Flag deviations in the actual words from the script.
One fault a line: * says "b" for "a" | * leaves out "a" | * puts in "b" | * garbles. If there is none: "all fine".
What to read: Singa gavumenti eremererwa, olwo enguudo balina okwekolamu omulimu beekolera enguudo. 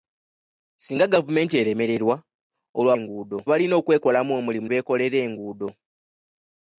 all fine